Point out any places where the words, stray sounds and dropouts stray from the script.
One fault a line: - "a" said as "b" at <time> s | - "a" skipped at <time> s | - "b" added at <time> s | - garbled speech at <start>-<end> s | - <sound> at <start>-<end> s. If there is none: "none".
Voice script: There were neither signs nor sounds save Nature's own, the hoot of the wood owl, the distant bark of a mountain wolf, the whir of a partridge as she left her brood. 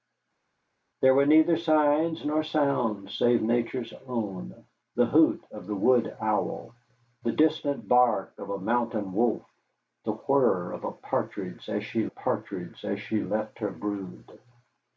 - "partridge as she" added at 12.0 s